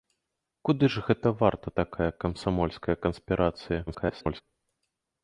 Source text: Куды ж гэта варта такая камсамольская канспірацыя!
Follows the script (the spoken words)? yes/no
no